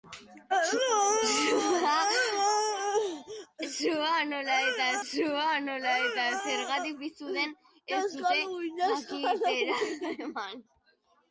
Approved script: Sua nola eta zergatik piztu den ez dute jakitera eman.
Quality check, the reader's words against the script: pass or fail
fail